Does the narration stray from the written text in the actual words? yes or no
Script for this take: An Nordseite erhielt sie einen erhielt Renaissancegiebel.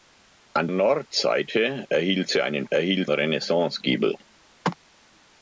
no